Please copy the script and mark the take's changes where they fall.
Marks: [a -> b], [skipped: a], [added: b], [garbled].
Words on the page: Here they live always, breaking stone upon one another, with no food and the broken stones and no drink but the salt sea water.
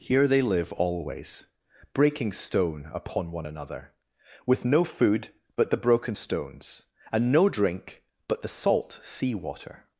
Here they live always, breaking stone upon one another, with no food [and -> but] the broken stones and no drink but the salt sea water.